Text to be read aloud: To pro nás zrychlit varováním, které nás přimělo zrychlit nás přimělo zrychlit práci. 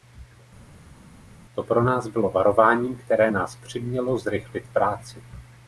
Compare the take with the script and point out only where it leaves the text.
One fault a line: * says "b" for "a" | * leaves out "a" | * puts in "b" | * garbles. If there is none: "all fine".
* says "bylo" for "zrychlit"
* leaves out "nás přimělo zrychlit"